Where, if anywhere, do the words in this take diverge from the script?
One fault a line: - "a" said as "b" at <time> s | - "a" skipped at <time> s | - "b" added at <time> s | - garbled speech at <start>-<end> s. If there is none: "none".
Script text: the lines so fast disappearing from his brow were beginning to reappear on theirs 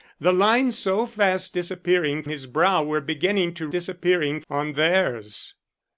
- "from" skipped at 2.2 s
- "reappear" said as "disappearing" at 3.7 s